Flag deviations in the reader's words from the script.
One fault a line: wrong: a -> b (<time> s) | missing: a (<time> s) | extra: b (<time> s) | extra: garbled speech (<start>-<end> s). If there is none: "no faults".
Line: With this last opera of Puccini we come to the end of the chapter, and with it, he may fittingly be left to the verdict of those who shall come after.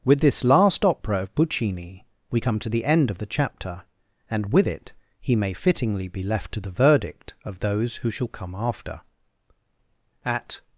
extra: At (10.2 s)